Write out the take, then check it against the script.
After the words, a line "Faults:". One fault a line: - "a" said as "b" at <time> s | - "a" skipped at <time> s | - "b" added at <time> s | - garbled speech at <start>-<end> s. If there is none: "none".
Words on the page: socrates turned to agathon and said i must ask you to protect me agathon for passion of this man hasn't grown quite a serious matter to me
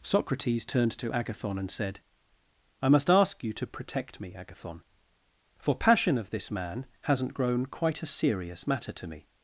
socrates turned to agathon and said i must ask you to protect me agathon for passion of this man hasn't grown quite a serious matter to me
Faults:
none